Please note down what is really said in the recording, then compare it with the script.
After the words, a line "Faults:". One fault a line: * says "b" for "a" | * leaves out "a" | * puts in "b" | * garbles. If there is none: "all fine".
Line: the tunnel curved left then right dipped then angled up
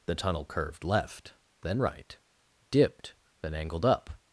the tunnel curved left then right dipped then angled up
Faults:
all fine